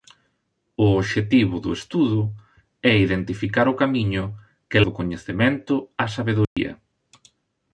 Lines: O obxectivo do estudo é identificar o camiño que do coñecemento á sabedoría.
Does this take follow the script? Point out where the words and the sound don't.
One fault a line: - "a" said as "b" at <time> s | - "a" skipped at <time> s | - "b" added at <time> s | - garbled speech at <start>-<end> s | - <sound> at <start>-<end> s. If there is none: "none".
- dropout at 6.4-6.6 s